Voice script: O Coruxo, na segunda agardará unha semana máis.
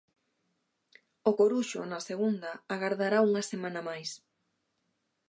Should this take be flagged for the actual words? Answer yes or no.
no